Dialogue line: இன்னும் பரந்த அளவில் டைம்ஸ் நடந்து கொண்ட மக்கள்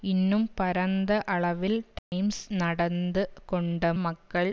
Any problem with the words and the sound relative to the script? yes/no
yes